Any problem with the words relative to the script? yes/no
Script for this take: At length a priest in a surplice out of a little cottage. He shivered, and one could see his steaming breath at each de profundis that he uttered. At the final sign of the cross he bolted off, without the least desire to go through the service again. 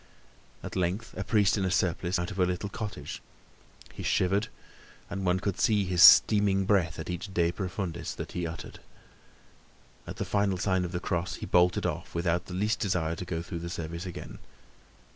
no